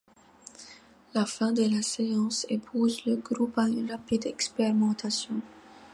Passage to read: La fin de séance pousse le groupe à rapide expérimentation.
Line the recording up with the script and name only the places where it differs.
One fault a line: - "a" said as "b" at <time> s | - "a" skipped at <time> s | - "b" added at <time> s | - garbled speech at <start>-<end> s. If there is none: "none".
- "la" added at 1.6 s
- "une" added at 3.7 s